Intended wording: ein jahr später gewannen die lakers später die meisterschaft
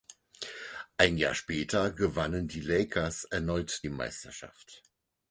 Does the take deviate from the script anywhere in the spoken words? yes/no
yes